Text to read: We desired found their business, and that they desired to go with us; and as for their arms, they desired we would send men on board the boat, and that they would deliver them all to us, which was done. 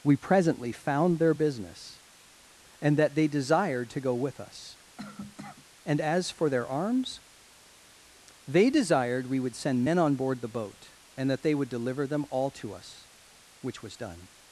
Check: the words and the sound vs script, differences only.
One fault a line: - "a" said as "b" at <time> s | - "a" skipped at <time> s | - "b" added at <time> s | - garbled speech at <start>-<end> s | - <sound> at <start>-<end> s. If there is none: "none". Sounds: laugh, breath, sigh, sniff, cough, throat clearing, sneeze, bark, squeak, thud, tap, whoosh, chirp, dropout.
- "desired" said as "presently" at 0.1 s
- cough at 5.0-5.7 s